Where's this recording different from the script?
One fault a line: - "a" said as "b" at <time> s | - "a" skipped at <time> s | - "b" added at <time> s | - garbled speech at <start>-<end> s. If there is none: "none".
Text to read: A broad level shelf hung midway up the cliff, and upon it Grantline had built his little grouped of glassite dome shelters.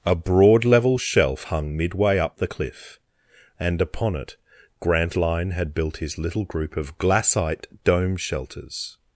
- "grouped" said as "group" at 6.4 s